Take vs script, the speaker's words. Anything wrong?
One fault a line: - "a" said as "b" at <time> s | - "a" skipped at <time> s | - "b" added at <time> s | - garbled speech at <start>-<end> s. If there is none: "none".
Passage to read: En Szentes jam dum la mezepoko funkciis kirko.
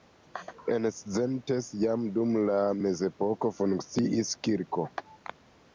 none